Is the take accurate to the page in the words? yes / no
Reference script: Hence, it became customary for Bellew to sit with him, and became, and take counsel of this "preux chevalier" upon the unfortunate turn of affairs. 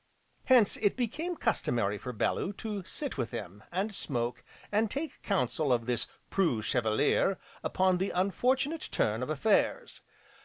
no